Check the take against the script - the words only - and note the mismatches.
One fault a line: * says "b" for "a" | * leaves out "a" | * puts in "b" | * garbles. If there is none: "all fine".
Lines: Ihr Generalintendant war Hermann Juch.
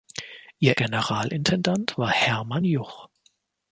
all fine